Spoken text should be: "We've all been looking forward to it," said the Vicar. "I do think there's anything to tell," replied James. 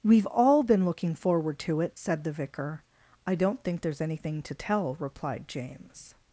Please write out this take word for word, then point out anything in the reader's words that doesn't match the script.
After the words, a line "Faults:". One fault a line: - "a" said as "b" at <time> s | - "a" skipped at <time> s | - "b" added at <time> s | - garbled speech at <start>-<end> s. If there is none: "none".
"We've all been looking forward to it," said the Vicar. "I don't think there's anything to tell," replied James.
Faults:
- "do" said as "don't" at 3.3 s